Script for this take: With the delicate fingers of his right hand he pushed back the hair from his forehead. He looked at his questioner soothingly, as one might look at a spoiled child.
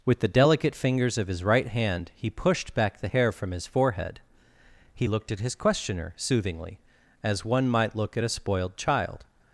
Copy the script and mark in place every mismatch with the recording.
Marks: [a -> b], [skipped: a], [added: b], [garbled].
With the delicate fingers of his right hand he pushed back the hair from his forehead. He looked at his questioner soothingly, as one might look at a spoiled child.